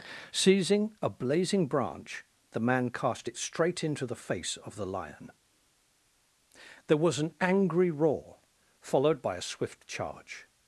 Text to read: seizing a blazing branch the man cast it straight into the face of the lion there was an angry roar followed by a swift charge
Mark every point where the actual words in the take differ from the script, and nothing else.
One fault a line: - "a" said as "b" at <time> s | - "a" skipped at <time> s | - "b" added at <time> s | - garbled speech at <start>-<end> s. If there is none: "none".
none